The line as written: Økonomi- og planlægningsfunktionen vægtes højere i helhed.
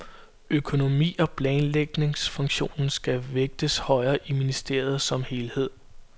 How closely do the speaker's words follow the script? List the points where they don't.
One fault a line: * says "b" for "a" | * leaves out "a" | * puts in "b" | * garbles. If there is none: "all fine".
* puts in "skal"
* puts in "ministeriet som"